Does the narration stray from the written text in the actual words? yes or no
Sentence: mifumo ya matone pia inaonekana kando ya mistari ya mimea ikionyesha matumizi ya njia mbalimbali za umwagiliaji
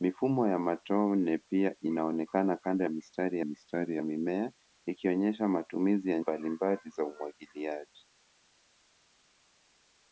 yes